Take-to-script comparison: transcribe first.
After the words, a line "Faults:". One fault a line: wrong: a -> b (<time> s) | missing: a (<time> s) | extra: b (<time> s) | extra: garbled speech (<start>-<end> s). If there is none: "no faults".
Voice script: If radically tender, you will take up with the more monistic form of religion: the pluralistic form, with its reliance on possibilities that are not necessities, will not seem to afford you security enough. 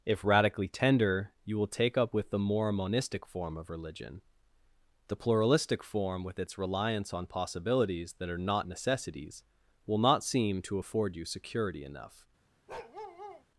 If radically tender, you will take up with the more monistic form of religion: the pluralistic form, with its reliance on possibilities that are not necessities, will not seem to afford you security enough.
Faults:
no faults